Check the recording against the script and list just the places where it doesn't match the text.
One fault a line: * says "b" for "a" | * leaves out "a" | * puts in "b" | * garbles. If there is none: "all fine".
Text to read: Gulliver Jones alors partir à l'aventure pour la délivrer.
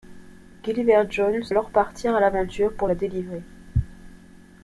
all fine